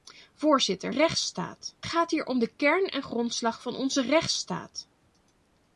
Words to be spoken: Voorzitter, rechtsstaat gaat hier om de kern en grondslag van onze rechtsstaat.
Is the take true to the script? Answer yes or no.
yes